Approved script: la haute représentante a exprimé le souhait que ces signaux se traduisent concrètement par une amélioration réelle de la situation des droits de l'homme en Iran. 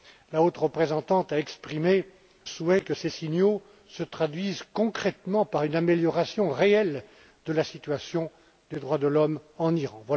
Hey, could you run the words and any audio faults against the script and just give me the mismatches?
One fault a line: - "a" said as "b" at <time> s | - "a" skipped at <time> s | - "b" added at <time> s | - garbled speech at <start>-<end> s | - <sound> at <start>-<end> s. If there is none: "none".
- "le" skipped at 2.1 s